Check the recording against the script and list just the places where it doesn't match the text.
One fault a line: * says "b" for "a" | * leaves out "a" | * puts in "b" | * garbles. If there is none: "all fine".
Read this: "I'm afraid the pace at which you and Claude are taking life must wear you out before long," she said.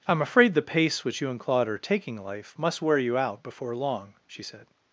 * leaves out "at"